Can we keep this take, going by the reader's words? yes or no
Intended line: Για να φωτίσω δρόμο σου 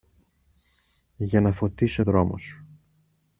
yes